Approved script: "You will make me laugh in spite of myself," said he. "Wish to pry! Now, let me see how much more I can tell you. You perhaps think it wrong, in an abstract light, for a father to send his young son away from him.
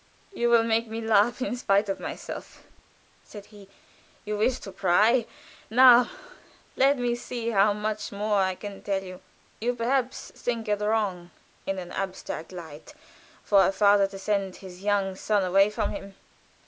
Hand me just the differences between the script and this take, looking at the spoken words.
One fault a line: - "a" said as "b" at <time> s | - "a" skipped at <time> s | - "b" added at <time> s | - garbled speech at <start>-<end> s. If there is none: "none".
- "You" added at 4.2 s